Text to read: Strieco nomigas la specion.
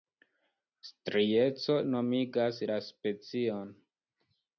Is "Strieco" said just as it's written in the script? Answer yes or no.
yes